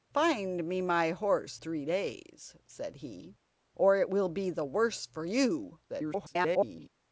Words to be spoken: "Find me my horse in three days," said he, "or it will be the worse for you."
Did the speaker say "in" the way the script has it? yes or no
no